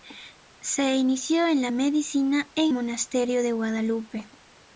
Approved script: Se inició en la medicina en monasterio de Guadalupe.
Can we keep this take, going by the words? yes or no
yes